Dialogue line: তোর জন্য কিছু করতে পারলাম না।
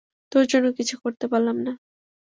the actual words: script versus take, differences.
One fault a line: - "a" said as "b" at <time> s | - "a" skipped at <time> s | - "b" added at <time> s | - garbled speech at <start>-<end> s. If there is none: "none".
none